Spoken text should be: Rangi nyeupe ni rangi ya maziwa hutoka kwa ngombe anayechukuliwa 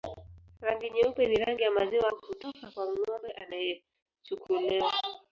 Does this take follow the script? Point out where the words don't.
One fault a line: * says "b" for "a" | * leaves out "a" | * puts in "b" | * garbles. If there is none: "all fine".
all fine